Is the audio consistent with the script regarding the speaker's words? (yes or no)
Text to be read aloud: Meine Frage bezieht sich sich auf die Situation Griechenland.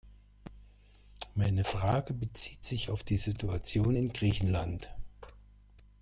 no